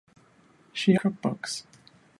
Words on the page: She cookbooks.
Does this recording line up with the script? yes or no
yes